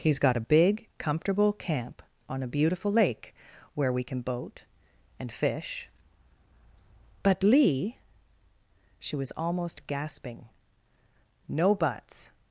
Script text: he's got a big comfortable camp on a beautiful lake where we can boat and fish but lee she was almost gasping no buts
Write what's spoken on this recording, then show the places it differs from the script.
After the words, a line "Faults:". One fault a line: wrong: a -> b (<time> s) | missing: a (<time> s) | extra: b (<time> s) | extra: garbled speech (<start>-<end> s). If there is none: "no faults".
he's got a big comfortable camp on a beautiful lake where we can boat and fish but lee she was almost gasping no buts
Faults:
no faults